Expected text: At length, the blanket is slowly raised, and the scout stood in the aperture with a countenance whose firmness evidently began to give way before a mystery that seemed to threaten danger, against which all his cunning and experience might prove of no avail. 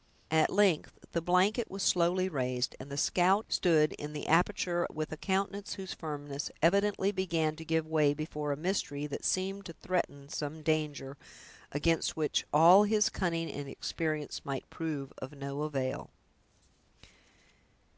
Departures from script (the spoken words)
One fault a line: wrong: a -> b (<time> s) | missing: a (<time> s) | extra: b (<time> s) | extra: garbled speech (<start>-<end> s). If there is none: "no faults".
wrong: is -> was (1.7 s)
extra: some (10.3 s)